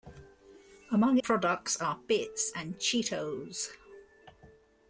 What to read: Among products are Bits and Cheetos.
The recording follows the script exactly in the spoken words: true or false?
true